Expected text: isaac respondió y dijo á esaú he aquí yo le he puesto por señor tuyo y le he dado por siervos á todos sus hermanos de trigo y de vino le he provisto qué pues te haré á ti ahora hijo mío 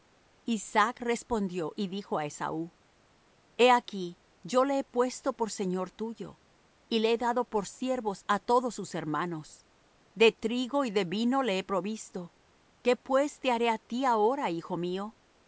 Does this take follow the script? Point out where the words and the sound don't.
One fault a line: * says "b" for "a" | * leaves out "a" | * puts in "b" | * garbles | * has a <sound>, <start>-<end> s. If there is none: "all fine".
all fine